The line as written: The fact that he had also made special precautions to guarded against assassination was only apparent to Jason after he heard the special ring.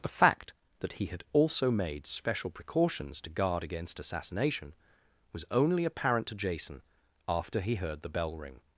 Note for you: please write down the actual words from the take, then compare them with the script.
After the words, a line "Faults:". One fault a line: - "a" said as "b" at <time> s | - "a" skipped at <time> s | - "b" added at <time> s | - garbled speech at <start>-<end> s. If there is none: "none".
The fact that he had also made special precautions to guard against assassination was only apparent to Jason after he heard the bell ring.
Faults:
- "guarded" said as "guard" at 3.3 s
- "special" said as "bell" at 8.1 s